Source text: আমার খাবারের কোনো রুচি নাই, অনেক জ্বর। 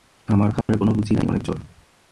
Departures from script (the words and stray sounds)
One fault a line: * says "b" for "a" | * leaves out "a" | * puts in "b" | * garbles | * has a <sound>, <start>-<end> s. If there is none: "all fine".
* has a dropout, 0.6-0.7 s